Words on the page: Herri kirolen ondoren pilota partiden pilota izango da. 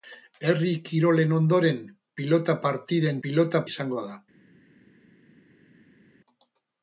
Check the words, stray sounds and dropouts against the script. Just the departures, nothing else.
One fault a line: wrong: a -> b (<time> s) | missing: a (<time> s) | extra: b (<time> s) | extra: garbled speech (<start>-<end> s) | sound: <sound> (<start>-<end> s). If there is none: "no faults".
no faults